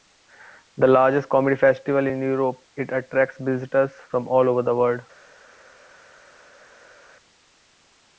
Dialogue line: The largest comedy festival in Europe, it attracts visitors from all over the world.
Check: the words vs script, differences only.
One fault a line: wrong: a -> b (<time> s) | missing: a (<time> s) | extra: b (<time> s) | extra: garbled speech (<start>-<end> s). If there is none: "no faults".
no faults